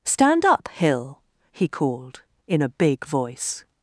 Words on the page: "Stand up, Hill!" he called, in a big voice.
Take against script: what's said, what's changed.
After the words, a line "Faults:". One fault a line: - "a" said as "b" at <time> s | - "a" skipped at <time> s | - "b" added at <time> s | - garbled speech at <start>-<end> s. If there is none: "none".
"Stand up, Hill!" he called, in a big voice.
Faults:
none